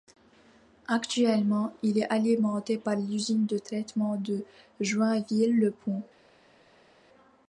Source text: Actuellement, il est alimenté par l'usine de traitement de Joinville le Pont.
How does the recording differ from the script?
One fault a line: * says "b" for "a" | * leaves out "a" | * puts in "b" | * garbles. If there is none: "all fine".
all fine